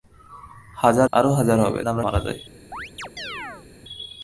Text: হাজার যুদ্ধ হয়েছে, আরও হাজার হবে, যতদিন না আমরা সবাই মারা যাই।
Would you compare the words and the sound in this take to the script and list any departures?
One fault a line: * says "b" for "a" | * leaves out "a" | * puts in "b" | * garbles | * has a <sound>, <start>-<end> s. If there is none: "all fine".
* leaves out "যুদ্ধ হয়েছে"
* leaves out "যতদিন"
* leaves out "সবাই"
* has a chirp, 2.7-3.7 s